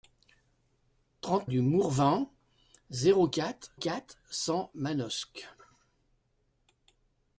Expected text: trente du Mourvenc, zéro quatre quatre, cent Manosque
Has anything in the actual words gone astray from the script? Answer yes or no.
no